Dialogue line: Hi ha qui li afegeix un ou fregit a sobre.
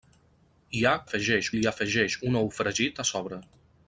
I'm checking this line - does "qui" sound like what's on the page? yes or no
no